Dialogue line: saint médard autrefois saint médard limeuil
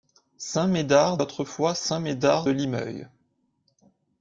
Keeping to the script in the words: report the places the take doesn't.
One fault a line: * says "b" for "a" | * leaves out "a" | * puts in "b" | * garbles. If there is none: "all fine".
all fine